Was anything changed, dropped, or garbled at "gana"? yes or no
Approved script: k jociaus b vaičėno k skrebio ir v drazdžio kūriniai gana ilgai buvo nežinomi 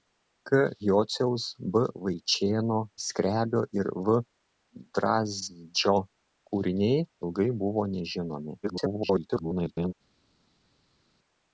yes